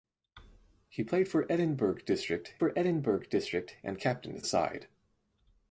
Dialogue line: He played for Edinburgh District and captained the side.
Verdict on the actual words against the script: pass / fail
fail